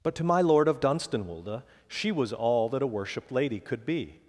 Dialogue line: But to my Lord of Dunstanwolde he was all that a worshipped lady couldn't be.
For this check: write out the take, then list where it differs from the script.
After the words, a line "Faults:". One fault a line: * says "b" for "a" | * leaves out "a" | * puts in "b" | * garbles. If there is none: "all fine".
But to my Lord of Dunstanwolde she was all that a worshipped lady could be.
Faults:
* says "she" for "he"
* says "could" for "couldn't"